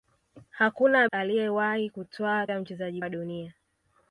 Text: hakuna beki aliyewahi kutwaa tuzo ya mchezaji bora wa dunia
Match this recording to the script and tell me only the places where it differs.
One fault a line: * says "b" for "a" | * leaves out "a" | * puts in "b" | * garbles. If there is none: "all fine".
* leaves out "beki"
* leaves out "tuzo"
* leaves out "bora"